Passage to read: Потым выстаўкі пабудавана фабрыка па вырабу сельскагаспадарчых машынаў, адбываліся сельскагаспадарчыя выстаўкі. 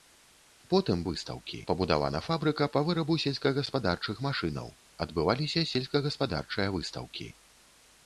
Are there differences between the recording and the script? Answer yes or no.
no